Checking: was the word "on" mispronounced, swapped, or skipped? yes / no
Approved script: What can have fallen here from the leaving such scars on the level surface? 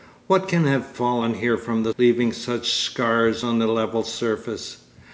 no